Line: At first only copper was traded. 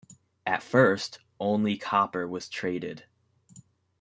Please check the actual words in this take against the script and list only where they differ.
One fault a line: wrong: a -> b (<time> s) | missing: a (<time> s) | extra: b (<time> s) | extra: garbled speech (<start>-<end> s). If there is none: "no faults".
no faults